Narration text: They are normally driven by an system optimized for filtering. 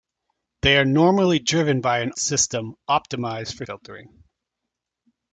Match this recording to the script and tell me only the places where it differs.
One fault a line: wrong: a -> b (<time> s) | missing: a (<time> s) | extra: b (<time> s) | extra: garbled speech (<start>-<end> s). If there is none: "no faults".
no faults